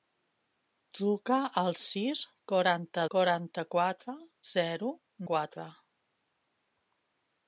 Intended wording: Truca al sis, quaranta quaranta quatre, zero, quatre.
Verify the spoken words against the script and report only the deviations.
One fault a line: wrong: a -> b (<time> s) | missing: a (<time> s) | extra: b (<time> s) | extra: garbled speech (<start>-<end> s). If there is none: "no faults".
no faults